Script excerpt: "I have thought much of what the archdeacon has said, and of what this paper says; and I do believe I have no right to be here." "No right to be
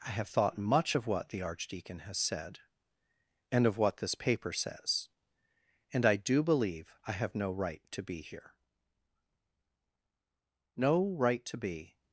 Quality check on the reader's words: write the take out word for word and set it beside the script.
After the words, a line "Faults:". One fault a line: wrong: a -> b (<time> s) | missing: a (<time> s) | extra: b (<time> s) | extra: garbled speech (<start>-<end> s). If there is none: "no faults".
"I have thought much of what the archdeacon has said, and of what this paper says; and I do believe I have no right to be here." "No right to be
Faults:
no faults